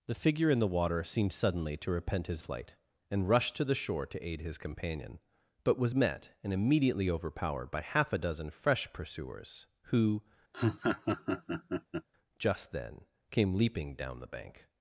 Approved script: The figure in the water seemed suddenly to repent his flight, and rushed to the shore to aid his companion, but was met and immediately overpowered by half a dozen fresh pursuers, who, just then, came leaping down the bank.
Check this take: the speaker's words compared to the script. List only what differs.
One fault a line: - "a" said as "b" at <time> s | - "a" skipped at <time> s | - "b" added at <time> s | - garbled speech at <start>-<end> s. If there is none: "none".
none